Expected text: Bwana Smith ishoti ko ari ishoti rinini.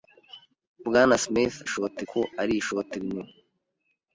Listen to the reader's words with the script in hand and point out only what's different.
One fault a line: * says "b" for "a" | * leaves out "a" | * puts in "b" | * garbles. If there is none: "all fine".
all fine